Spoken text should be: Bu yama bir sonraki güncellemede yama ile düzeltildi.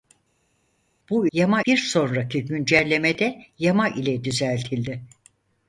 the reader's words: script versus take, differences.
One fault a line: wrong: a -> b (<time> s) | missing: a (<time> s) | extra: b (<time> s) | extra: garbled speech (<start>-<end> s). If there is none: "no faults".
no faults